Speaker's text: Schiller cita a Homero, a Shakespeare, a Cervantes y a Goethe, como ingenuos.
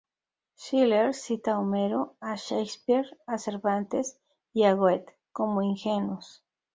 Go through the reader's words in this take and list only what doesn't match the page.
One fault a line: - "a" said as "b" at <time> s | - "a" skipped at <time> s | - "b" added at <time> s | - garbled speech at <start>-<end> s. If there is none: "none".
none